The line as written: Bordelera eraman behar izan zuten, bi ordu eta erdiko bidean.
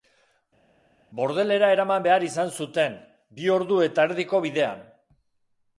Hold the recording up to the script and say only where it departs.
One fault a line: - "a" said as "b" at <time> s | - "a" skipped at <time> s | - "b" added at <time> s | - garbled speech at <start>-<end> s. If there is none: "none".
none